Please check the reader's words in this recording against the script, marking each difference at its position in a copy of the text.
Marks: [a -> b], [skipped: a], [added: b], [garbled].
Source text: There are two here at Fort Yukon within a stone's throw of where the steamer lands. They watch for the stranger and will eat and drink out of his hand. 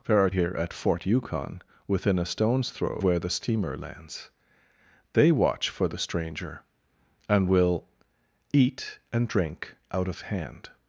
There are [skipped: two] here at Fort Yukon within a stone's throw [skipped: of] where the steamer lands. They watch for the stranger and will eat and drink out of [skipped: his] hand.